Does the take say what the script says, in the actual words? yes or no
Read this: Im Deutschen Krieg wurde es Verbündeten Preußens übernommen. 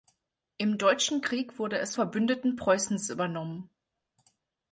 yes